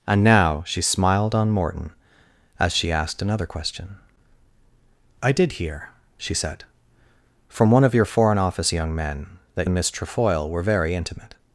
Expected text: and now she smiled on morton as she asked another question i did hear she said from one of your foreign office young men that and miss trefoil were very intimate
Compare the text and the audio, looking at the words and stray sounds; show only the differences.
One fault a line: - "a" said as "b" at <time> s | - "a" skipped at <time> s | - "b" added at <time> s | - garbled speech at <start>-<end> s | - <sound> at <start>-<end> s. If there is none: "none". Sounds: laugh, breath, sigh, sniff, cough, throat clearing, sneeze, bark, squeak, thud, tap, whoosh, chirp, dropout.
none